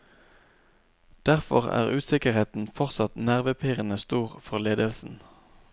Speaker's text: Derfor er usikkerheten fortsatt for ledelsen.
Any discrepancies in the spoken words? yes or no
yes